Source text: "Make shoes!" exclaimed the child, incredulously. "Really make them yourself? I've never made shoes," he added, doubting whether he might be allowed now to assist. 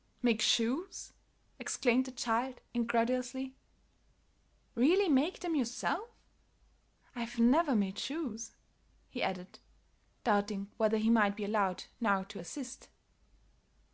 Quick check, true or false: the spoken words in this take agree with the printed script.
true